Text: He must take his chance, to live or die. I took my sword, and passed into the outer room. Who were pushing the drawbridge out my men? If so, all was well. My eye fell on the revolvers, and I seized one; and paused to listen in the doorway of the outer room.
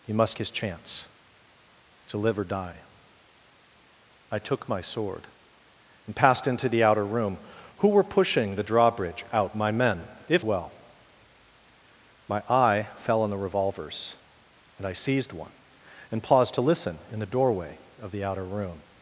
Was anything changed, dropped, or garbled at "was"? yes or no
yes